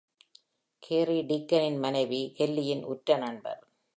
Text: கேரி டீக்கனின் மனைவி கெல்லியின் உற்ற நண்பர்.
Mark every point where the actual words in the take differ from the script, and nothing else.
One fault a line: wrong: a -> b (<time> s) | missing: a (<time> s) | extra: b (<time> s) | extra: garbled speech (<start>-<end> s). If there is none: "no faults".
no faults